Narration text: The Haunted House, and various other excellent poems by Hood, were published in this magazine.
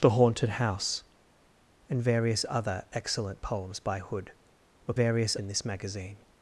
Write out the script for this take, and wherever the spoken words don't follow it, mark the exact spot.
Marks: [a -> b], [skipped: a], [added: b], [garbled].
The Haunted House, and various other excellent poems by Hood, were [published -> various] in this magazine.